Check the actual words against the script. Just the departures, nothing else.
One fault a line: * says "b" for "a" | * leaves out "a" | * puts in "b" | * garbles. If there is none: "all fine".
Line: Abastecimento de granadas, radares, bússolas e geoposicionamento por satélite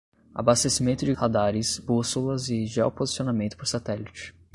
* leaves out "granadas"